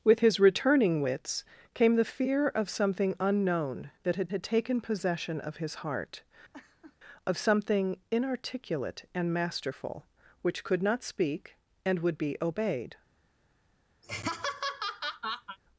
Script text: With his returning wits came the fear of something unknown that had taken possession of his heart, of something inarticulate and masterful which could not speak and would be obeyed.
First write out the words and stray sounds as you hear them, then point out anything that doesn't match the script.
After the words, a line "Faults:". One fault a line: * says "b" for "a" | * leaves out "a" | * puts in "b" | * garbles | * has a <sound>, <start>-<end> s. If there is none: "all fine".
With his returning wits came the fear of something unknown that had had taken possession of his heart, of something inarticulate and masterful which could not speak and would be obeyed.
Faults:
* puts in "had"
* has a laugh, 6.5-7.0 s
* has a laugh, 14.0-15.6 s